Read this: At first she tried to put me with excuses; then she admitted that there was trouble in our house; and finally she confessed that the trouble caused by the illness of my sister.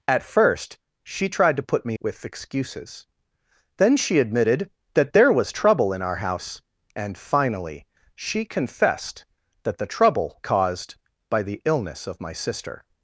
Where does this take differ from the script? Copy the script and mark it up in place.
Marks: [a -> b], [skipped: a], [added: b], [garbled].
At first she tried to put me with excuses; then she admitted that there was trouble in our house; and finally she confessed that the trouble caused by the illness of my sister.